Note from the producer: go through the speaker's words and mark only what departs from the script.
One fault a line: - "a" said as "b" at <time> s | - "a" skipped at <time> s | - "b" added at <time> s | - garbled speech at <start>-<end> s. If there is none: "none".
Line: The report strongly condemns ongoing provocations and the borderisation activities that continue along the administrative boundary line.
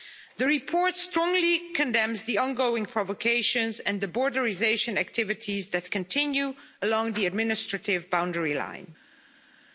- "the" added at 2.2 s